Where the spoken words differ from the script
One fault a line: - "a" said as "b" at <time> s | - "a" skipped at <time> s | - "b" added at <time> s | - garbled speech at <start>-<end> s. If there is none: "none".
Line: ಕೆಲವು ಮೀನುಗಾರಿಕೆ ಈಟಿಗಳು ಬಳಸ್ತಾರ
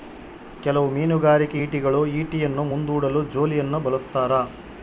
- "ಈಟಿಯನ್ನು ಮುಂದೂಡಲು ಜೋಲಿಯನ್ನು" added at 2.2 s